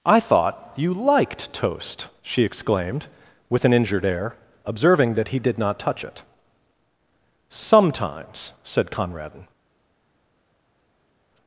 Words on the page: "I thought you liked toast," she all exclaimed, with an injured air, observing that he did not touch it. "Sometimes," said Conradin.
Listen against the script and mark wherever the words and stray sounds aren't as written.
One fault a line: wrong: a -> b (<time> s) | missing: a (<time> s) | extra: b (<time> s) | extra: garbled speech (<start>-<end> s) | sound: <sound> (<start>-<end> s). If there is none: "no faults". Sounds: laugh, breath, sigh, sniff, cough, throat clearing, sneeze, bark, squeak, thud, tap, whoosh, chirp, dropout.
missing: all (2.4 s)